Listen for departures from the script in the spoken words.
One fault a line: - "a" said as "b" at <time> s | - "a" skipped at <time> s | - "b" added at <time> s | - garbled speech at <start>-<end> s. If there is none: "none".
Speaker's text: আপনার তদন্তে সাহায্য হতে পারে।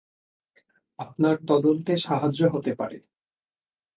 none